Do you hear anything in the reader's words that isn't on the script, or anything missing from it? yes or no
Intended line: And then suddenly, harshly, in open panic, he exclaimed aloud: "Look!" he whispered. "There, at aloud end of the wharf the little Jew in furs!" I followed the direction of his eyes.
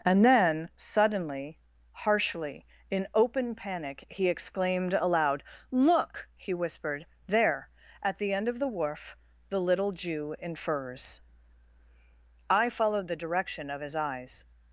yes